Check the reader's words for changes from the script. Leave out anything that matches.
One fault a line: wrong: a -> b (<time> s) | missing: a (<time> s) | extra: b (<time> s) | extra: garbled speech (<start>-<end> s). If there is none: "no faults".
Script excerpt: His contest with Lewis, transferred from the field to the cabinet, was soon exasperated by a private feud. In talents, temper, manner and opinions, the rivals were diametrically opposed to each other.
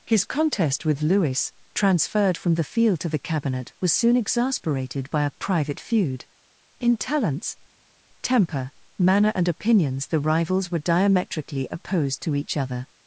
no faults